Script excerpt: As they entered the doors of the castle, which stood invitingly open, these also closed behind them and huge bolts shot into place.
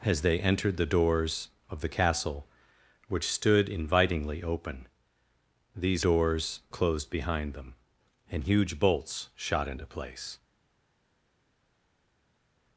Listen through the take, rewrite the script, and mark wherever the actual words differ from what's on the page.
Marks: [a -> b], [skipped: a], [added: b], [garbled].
As they entered the doors of the castle, which stood invitingly open, these [also -> doors] closed behind them and huge bolts shot into place.